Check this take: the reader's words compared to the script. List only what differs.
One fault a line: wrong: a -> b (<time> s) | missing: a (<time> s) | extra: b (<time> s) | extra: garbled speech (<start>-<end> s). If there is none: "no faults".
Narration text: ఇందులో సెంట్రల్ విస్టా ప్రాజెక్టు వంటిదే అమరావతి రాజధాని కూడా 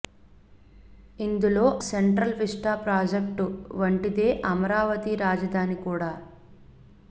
no faults